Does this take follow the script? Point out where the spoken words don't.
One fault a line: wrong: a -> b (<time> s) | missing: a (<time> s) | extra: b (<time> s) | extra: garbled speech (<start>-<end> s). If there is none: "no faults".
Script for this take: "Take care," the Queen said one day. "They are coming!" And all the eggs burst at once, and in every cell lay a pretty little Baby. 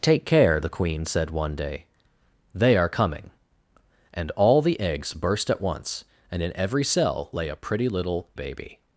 no faults